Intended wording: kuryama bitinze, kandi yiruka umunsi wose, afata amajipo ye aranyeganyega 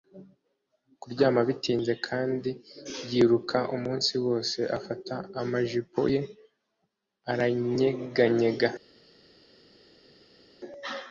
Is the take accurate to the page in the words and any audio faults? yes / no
yes